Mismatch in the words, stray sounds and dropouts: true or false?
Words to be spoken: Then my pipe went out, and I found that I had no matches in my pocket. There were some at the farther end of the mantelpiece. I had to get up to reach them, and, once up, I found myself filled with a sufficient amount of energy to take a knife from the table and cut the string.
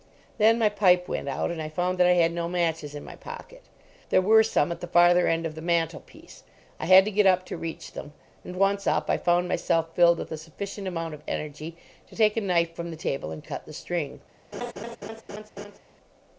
true